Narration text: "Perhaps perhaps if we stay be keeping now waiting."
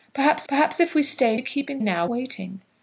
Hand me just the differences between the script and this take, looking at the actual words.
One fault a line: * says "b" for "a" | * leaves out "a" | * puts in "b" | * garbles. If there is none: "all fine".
all fine